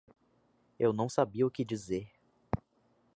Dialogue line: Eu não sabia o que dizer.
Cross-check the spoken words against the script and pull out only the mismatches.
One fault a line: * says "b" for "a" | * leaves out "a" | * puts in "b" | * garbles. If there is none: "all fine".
all fine